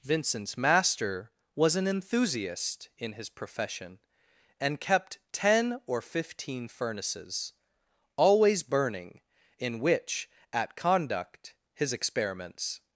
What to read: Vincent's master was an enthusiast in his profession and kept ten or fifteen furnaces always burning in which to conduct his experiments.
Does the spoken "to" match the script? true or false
false